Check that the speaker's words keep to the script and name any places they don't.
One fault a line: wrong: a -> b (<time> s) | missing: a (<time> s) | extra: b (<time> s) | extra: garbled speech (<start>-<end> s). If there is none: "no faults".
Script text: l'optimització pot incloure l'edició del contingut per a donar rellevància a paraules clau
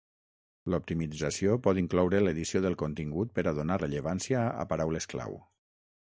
no faults